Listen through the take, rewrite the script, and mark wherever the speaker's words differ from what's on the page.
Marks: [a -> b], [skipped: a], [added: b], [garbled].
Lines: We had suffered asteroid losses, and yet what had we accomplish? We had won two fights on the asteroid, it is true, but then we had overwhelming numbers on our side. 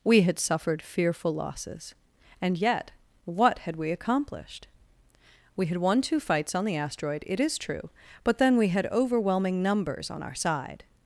We had suffered [asteroid -> fearful] losses, and yet what had we [accomplish? -> accomplished] We had won two fights on the asteroid, it is true, but then we had overwhelming numbers on our side.